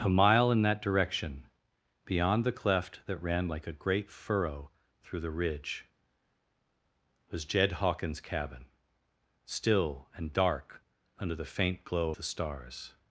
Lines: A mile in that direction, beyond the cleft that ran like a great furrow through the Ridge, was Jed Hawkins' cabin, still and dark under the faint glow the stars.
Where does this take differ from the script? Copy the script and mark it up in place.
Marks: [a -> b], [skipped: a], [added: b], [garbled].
A mile in that direction, beyond the cleft that ran like a great furrow through the Ridge, was Jed Hawkins' cabin, still and dark under the faint glow the stars.